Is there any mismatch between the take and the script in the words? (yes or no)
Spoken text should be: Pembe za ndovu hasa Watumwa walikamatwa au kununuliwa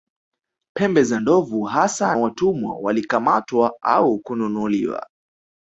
no